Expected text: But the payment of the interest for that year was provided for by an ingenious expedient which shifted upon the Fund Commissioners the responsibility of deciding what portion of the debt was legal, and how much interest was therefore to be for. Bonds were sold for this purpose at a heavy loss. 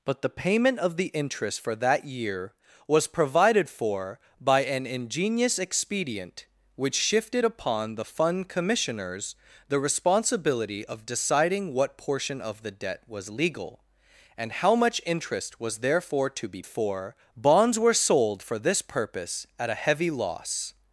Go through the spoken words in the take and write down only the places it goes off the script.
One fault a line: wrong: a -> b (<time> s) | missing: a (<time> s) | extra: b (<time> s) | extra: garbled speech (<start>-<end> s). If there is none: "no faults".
no faults